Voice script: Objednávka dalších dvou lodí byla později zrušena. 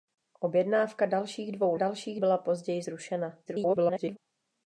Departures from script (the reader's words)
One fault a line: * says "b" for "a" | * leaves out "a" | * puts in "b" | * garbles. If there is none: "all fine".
* says "dalších" for "lodí"
* garbles